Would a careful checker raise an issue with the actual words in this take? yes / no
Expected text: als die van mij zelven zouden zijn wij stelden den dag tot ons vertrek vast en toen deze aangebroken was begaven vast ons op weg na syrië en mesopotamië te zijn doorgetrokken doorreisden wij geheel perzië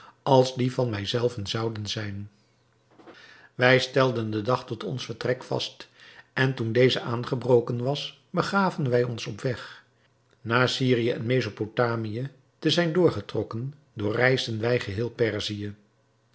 yes